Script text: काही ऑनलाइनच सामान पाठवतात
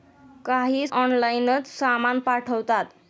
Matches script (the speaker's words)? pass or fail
pass